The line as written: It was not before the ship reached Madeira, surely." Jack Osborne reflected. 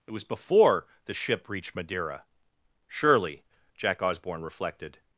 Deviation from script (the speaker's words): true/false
true